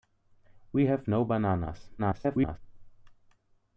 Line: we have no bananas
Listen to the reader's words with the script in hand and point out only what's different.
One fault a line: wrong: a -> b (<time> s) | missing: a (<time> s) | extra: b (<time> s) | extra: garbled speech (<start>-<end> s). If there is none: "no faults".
extra: garbled speech (2.0-2.6 s)